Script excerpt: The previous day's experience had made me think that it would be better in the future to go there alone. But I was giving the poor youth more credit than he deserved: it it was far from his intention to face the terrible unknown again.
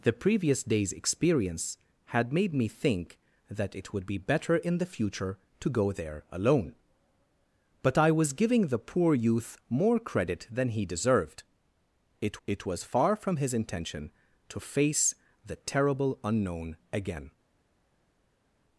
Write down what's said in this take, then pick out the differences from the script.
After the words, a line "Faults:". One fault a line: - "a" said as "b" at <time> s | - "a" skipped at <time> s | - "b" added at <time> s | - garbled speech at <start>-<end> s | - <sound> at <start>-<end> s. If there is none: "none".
The previous day's experience had made me think that it would be better in the future to go there alone. But I was giving the poor youth more credit than he deserved: it it was far from his intention to face the terrible unknown again.
Faults:
none